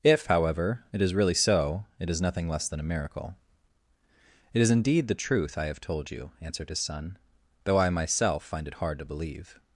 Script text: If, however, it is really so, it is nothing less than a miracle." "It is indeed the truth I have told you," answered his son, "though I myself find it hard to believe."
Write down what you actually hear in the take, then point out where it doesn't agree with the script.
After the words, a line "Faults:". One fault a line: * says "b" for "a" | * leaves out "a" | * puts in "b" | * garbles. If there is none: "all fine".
If, however, it is really so, it is nothing less than a miracle." "It is indeed the truth I have told you," answered his son, "though I myself find it hard to believe."
Faults:
all fine